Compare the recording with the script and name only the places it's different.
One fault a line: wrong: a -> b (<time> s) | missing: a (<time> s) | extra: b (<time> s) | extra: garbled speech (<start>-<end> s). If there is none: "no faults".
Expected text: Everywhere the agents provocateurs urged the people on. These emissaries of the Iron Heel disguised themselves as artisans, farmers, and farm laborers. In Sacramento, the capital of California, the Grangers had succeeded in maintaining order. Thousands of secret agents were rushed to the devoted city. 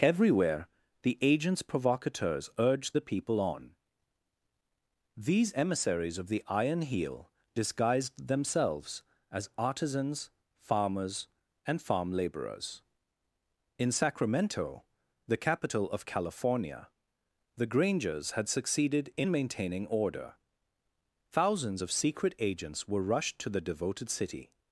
no faults